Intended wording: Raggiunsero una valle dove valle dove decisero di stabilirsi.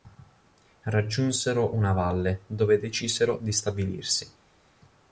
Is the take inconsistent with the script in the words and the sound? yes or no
yes